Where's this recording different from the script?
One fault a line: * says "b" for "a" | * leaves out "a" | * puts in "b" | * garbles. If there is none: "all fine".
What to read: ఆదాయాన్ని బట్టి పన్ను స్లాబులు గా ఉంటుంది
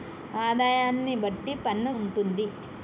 * leaves out "స్లాబులు గా"